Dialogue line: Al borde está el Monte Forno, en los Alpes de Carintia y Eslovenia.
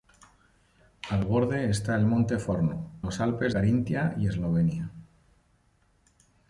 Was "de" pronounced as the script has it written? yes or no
no